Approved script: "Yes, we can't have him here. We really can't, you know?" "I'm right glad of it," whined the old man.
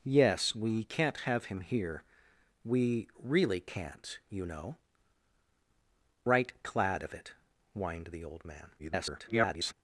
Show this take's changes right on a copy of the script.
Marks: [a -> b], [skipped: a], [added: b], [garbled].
"Yes, we can't have him here. We really can't, you know?" [skipped: "I'm] right glad of it," whined the old man. [garbled]